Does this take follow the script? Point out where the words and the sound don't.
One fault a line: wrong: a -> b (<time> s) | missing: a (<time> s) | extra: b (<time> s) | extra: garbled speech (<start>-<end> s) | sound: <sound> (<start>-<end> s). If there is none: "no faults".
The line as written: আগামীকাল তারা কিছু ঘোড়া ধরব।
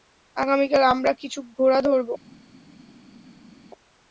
wrong: তারা -> আমরা (0.9 s)